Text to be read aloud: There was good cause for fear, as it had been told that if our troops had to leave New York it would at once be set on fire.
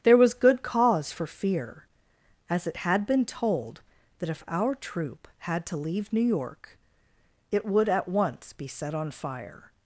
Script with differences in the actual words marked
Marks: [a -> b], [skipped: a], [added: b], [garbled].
There was good cause for fear, as it had been told that if our [troops -> troop] had to leave New York it would at once be set on fire.